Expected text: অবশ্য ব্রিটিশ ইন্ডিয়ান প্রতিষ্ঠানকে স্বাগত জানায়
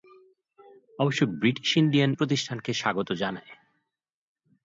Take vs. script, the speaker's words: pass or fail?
pass